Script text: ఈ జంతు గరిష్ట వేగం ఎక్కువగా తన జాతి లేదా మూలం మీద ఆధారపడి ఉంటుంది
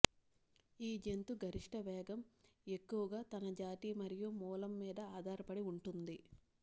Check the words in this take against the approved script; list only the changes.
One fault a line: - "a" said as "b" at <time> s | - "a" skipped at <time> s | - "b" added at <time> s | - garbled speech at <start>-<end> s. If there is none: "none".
- "లేదా" said as "మరియు" at 4.0 s